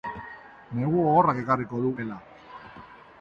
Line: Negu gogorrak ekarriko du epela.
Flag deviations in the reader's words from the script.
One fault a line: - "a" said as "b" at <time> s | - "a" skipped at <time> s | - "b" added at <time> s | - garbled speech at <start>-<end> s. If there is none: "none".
none